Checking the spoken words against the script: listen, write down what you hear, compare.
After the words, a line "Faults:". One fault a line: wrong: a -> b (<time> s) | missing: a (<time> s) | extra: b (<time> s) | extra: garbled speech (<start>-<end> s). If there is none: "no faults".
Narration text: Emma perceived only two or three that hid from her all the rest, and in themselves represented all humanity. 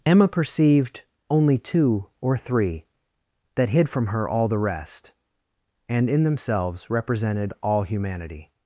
Emma perceived only two or three that hid from her all the rest, and in themselves represented all humanity.
Faults:
no faults